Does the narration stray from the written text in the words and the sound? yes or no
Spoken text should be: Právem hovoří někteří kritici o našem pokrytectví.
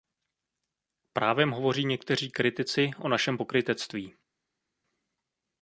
no